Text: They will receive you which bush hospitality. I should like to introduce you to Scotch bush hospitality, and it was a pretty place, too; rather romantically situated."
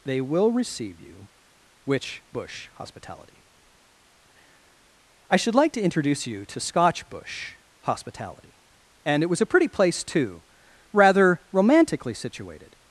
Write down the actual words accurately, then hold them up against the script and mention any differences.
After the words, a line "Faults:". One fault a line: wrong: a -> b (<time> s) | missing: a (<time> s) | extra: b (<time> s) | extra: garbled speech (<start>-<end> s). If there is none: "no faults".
They will receive you which bush hospitality. I should like to introduce you to Scotch bush hospitality, and it was a pretty place, too; rather romantically situated."
Faults:
no faults